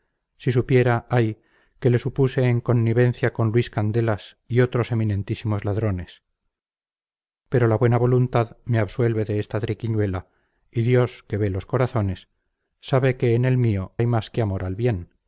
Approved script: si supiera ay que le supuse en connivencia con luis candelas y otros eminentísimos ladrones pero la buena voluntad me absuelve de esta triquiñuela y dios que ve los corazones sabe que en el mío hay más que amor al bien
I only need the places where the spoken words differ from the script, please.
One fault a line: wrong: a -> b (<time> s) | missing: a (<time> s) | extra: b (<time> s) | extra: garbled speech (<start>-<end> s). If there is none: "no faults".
no faults